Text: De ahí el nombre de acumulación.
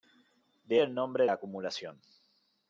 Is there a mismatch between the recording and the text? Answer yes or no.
yes